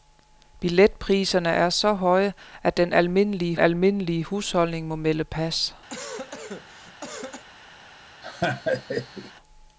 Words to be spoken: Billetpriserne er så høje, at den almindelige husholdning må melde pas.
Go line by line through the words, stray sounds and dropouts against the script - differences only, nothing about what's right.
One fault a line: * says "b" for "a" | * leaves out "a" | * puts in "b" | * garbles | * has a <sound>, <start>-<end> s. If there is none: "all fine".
* puts in "almindelige"
* has a cough, 5.9-7.4 s
* has a laugh, 8.2-9.3 s